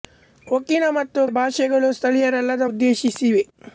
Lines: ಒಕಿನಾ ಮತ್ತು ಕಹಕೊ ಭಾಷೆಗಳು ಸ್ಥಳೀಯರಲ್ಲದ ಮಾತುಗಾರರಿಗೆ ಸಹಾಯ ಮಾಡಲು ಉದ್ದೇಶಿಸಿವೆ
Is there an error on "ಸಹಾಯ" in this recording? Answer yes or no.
yes